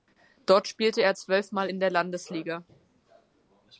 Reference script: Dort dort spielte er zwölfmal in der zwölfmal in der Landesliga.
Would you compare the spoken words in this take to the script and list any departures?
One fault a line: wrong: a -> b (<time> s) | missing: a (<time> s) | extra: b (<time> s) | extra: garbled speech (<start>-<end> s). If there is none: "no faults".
missing: dort (0.7 s)
missing: zwölfmal in der (1.9 s)